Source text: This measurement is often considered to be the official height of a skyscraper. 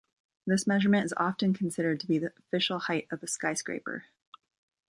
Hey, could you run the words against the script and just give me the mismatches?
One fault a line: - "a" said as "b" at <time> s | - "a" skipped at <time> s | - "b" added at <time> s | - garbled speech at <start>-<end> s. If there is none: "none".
none